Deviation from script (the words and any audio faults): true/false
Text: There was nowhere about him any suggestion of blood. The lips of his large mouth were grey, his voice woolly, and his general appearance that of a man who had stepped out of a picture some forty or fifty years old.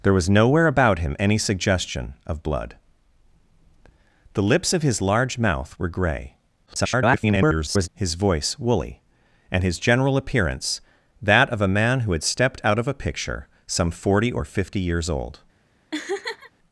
true